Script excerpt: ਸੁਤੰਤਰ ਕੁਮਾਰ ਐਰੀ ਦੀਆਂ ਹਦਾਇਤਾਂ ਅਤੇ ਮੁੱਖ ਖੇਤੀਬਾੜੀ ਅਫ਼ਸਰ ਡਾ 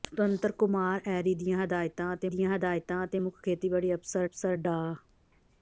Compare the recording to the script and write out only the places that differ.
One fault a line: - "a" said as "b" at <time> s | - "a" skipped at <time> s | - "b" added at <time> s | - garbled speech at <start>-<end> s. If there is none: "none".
- "ਦੀਆਂ ਹਦਾਇਤਾਂ ਅਤੇ" added at 2.3 s
- "ਅਫ਼ਸਰ" added at 4.2 s